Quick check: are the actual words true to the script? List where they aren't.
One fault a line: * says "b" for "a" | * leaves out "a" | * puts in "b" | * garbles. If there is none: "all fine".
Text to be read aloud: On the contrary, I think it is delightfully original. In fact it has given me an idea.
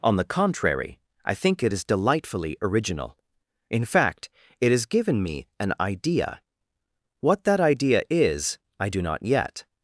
* puts in "What that idea is I do not yet"